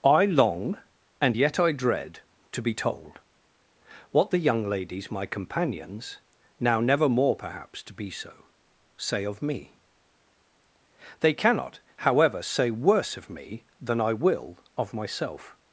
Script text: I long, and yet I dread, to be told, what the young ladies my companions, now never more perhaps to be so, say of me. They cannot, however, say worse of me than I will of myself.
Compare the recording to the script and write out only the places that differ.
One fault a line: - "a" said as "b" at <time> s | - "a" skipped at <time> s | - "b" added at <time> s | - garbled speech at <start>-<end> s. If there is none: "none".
none